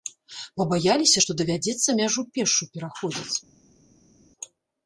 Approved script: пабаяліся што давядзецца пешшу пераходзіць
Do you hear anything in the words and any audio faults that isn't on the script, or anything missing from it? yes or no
yes